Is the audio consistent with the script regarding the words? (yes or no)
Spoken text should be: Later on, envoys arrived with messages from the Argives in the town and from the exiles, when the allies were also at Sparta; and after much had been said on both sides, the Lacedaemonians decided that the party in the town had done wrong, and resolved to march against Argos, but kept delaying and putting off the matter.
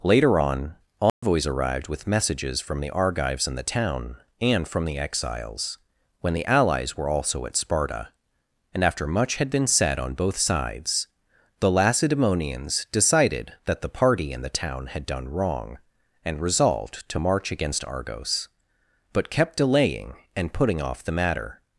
yes